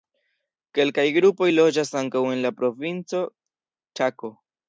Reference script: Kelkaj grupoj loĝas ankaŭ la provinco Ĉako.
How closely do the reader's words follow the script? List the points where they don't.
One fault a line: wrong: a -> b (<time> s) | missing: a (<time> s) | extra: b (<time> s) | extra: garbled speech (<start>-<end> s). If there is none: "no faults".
extra: en (2.4 s)